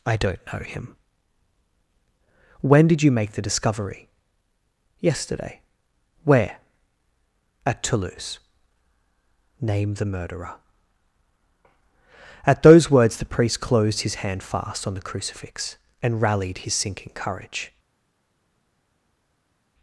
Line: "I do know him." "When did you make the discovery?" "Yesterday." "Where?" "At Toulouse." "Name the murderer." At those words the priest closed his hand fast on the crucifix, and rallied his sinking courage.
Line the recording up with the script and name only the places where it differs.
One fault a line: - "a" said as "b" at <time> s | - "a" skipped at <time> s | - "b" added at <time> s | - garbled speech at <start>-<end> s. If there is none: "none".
- "do" said as "don't" at 0.2 s